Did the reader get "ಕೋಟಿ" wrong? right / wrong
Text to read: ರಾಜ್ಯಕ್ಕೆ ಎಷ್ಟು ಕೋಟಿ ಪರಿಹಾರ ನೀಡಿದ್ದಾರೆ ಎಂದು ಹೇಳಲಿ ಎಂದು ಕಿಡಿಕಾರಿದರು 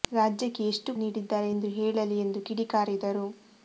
wrong